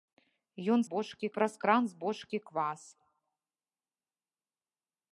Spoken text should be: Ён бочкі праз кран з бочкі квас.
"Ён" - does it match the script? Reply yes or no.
yes